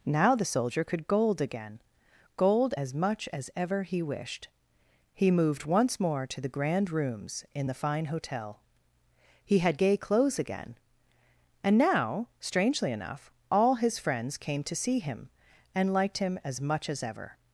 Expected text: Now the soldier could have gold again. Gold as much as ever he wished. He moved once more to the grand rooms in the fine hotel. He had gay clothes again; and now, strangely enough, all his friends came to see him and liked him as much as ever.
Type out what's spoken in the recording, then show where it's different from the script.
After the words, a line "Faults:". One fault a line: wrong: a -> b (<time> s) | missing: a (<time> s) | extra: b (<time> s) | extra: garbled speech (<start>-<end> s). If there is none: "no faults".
Now the soldier could gold again. Gold as much as ever he wished. He moved once more to the grand rooms in the fine hotel. He had gay clothes again; and now, strangely enough, all his friends came to see him and liked him as much as ever.
Faults:
missing: have (1.1 s)